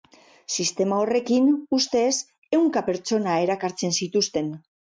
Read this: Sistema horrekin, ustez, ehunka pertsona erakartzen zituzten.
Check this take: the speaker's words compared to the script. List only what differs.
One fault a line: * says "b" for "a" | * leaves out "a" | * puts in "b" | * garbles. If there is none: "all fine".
all fine